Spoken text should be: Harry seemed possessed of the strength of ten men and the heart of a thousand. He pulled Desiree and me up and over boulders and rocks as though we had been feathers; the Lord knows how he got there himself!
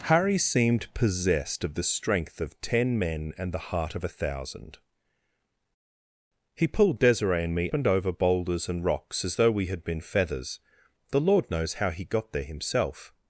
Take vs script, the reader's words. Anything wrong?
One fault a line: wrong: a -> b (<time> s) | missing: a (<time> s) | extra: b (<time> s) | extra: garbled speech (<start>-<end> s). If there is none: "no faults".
missing: up (7.7 s)